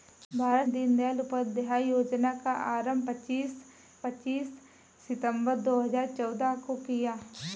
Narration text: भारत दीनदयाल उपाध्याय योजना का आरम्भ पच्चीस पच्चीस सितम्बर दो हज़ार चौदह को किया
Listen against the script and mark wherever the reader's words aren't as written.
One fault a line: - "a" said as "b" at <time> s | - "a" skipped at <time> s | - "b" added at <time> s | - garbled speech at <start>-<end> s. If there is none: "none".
none